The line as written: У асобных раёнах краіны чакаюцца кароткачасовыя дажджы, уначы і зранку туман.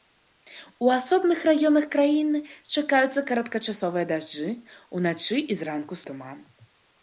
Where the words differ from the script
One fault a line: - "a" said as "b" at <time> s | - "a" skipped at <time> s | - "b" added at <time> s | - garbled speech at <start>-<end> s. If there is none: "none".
none